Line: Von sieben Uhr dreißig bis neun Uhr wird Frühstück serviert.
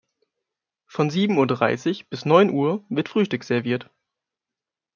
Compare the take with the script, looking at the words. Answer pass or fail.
pass